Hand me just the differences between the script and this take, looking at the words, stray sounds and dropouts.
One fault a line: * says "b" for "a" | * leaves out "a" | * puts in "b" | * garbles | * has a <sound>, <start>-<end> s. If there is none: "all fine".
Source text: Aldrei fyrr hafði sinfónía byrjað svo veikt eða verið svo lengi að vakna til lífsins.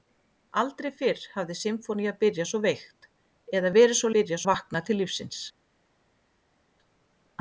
* says "byrjað" for "lengi"